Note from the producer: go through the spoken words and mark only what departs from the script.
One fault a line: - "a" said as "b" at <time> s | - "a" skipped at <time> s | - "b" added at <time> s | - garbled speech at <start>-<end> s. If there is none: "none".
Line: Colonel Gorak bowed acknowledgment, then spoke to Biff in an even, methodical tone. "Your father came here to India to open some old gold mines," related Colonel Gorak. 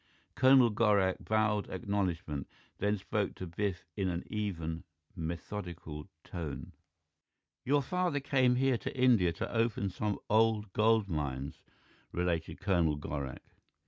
none